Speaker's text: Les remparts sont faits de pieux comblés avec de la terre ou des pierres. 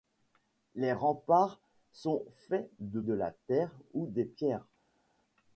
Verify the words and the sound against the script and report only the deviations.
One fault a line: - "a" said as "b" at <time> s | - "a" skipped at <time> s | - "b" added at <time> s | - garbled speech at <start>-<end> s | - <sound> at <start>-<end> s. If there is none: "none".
- "pieux comblés avec" skipped at 3.0 s